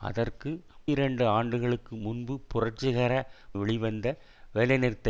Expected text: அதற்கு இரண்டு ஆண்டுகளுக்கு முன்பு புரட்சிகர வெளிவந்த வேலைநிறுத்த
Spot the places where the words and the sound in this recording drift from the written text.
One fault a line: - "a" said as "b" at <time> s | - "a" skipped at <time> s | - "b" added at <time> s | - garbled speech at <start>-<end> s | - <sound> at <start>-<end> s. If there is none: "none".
none